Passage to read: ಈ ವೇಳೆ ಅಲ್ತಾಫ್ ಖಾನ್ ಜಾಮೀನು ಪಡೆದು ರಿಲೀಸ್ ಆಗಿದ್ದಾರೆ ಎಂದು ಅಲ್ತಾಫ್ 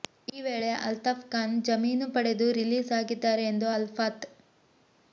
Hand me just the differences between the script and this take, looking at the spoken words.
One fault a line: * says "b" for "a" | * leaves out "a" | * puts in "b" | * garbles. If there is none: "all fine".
all fine